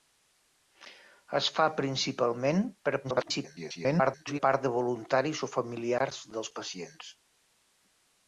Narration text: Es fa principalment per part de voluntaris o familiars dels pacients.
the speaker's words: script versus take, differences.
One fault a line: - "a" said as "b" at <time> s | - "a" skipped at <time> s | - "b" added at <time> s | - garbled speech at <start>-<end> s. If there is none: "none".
- garbled speech at 3.0-4.4 s